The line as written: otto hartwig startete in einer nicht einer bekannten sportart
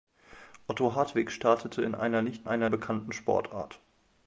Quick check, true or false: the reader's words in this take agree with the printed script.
true